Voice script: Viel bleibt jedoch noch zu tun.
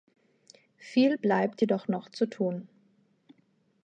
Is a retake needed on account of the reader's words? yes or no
no